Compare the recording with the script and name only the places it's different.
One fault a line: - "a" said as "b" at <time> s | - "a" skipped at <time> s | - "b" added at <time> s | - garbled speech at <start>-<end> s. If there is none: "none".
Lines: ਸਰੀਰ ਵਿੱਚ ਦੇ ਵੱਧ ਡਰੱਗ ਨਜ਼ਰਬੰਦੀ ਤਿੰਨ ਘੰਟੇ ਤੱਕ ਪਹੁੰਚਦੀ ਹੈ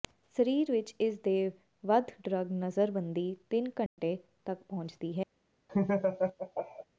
- "ਇਸ" added at 1.0 s